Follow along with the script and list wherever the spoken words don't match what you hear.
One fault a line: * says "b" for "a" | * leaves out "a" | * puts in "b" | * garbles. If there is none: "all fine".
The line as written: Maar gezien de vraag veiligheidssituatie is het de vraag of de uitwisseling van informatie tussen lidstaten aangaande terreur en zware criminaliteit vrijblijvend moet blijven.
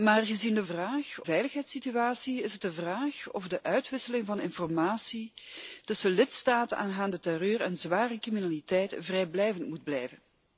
all fine